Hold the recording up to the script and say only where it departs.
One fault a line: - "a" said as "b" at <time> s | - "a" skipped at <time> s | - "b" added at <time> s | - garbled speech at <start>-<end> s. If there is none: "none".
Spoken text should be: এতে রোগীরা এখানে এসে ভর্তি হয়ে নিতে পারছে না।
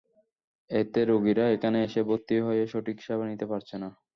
- "সঠিক সেবা" added at 2.7 s